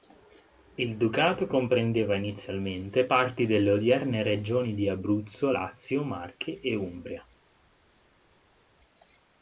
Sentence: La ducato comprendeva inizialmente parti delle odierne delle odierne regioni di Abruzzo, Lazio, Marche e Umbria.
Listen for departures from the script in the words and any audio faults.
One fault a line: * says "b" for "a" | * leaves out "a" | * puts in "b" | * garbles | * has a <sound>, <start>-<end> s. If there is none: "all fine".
* says "Il" for "La"
* leaves out "delle odierne"